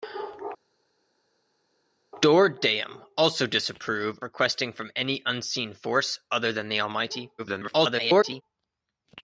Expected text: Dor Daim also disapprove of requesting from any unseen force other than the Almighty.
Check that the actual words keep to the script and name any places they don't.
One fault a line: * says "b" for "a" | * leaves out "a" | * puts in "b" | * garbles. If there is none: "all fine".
* leaves out "of"
* garbles